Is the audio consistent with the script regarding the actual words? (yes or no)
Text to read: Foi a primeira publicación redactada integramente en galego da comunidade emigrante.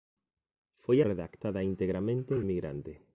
no